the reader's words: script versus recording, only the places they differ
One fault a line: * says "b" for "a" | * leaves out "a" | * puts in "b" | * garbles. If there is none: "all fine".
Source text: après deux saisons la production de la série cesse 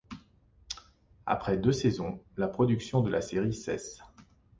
all fine